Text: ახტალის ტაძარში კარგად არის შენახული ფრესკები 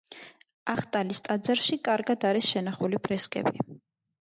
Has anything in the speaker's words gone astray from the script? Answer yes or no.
no